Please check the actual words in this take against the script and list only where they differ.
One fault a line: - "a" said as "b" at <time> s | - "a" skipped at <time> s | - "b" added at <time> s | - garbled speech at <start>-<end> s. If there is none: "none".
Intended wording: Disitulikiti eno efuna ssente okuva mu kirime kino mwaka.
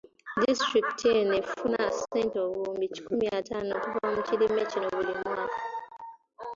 - "obuwumbi kikumi ataano" added at 2.5 s
- "buli" added at 4.9 s